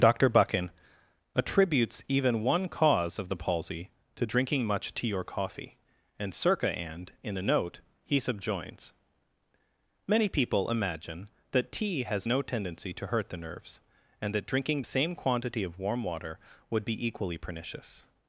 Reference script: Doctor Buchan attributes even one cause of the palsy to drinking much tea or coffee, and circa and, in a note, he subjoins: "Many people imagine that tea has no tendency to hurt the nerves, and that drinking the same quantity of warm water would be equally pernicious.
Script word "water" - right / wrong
right